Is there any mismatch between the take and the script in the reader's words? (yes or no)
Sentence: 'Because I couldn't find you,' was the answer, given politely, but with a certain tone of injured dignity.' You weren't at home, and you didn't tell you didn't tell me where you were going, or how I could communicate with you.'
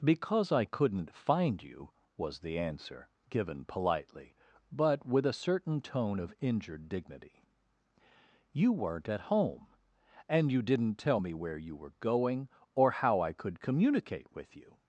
yes